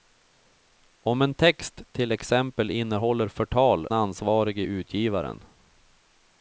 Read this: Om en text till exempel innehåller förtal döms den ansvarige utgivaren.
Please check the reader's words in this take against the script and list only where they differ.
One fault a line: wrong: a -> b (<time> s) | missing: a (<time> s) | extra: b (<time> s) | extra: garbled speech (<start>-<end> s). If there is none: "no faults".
missing: döms den (3.9 s)